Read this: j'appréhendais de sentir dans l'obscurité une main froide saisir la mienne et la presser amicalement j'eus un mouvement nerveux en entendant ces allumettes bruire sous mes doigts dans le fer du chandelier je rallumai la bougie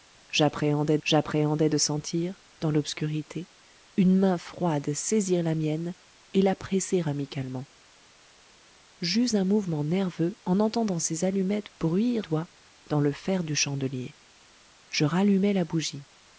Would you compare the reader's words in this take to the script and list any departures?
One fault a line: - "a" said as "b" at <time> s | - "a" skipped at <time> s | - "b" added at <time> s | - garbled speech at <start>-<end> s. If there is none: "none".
- "j'appréhendais" added at 1.0 s
- "sous mes" skipped at 12.3 s